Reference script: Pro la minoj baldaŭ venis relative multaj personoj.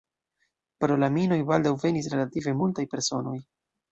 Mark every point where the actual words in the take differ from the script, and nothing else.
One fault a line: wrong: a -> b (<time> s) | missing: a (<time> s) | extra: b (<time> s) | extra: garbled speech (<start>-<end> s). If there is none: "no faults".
no faults